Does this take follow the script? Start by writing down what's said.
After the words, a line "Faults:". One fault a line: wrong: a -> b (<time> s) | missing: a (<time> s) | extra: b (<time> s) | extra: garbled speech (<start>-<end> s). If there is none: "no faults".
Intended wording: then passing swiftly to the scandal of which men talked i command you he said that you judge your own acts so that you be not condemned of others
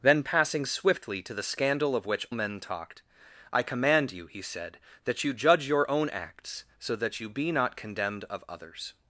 then passing swiftly to the scandal of which men talked i command you he said that you judge your own acts so that you be not condemned of others
Faults:
no faults